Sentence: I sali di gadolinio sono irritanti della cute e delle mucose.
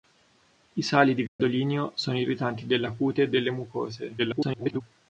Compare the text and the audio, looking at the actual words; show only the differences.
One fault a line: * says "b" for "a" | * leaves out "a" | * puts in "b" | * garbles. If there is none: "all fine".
* garbles